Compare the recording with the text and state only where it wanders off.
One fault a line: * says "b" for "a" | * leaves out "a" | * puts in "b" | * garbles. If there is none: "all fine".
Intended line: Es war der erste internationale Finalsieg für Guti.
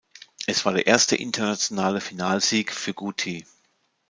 all fine